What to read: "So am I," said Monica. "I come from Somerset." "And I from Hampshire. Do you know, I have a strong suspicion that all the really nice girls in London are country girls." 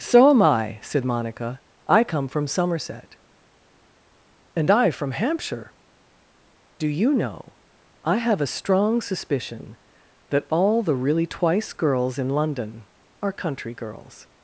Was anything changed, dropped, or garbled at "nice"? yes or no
yes